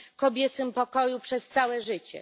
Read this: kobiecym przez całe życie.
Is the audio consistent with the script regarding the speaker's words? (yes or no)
no